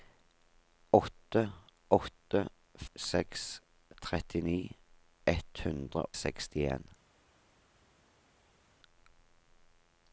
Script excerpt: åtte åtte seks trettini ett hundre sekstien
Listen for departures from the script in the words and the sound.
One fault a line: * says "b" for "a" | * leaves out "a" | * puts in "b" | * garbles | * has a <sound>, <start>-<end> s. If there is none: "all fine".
all fine